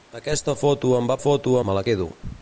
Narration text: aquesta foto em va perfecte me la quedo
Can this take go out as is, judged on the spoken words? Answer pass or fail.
fail